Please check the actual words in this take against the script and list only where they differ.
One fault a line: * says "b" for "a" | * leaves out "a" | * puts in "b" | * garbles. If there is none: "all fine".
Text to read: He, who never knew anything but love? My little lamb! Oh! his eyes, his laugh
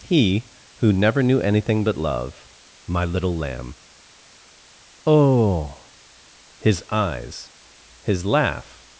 all fine